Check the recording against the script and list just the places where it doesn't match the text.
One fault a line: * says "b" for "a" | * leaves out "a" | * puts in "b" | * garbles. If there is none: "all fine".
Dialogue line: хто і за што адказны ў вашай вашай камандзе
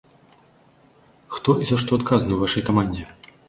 * leaves out "вашай"